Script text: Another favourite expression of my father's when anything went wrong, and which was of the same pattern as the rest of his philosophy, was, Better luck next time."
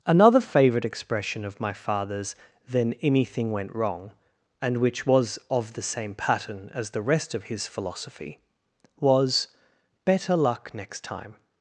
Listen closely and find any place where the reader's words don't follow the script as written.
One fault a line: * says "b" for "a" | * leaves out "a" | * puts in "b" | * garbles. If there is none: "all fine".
* says "then" for "when"